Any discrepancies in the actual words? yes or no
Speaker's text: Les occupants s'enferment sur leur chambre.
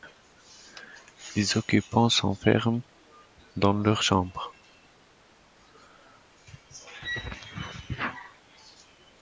yes